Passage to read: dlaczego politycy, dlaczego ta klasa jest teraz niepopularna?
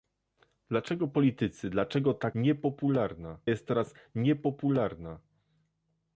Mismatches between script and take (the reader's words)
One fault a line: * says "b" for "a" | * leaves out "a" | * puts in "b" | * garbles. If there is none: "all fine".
* says "niepopularna" for "klasa"